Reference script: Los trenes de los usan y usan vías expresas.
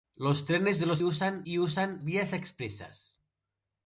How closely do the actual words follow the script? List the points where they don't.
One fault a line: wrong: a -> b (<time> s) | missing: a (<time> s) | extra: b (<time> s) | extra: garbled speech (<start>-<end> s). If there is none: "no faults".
no faults